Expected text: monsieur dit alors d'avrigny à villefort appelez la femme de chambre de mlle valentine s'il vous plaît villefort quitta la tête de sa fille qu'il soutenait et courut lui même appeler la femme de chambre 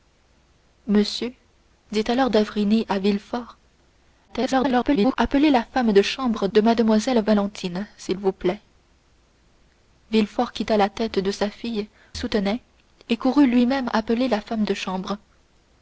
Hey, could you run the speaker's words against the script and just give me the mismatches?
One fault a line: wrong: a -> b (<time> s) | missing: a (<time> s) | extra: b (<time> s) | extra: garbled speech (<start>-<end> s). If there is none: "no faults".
extra: garbled speech (4.3-5.2 s)
missing: qu'il (11.9 s)